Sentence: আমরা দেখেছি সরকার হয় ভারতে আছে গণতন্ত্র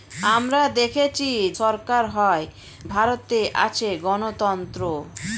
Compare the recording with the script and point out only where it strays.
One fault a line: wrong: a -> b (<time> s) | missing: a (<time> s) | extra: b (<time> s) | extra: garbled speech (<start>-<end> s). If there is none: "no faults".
no faults